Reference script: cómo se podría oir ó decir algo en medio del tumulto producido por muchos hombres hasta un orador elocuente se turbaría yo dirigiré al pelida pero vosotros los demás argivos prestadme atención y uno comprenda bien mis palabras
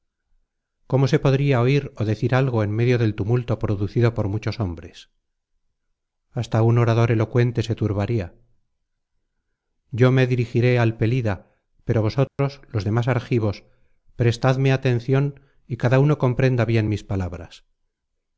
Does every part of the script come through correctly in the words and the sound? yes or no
no